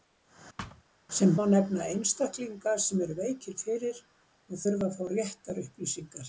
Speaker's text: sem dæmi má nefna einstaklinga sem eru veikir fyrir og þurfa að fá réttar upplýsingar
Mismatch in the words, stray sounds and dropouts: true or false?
true